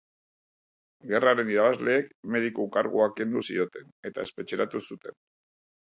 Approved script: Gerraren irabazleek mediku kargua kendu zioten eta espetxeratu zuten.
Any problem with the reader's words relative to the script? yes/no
no